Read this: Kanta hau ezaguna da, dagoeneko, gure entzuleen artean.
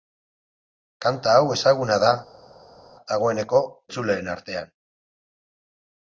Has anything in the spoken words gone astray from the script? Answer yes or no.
yes